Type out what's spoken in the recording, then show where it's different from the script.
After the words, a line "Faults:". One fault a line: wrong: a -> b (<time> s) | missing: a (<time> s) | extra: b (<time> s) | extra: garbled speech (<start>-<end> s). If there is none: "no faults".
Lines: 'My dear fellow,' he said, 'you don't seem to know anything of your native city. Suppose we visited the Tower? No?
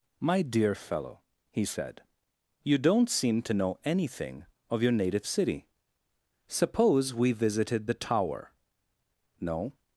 'My dear fellow,' he said, 'you don't seem to know anything of your native city. Suppose we visited the Tower? No?
Faults:
no faults